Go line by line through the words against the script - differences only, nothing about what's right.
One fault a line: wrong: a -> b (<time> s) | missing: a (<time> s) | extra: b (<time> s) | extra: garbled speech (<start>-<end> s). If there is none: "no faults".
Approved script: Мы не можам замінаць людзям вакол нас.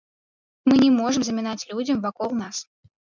no faults